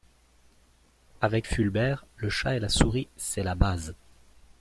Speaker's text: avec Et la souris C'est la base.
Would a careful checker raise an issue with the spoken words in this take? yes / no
yes